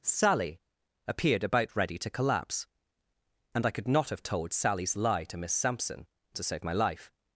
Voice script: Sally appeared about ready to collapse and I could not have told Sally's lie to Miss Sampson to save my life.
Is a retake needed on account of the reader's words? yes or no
no